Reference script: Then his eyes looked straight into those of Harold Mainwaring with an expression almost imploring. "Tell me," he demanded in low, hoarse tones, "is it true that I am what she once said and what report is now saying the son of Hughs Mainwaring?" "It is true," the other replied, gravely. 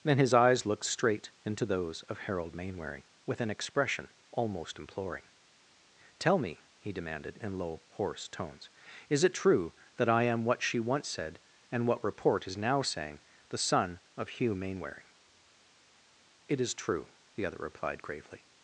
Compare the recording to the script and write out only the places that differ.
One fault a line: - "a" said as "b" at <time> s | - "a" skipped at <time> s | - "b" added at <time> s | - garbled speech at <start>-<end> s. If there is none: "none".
- "Hughs" said as "Hugh" at 14.3 s